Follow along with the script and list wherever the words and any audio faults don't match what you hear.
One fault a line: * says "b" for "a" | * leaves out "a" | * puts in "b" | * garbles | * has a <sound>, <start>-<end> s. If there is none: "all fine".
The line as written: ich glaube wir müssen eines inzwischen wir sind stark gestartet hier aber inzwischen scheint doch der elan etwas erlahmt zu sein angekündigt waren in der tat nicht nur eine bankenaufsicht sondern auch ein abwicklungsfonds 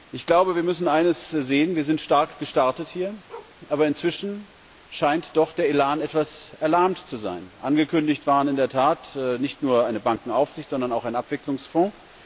* says "sehen" for "inzwischen"
* has a bark, 3.3-3.6 s